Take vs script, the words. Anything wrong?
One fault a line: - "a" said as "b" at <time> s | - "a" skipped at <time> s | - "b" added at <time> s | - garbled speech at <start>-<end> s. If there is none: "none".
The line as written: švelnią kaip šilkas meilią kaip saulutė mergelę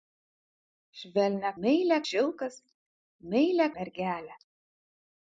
- "kaip" said as "meilią" at 1.6 s
- "kaip saulutė" skipped at 3.7 s